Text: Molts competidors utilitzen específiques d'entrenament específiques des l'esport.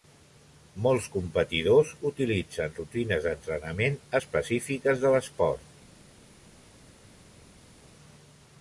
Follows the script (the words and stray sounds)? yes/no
no